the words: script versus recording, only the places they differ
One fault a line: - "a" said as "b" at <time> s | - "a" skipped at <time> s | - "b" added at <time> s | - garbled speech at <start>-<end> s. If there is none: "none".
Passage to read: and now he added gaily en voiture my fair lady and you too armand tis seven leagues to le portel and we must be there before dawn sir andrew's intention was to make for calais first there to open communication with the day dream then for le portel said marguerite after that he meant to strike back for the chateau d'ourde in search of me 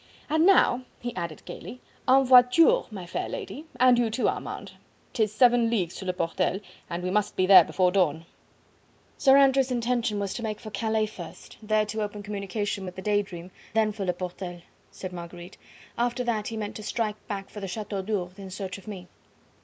none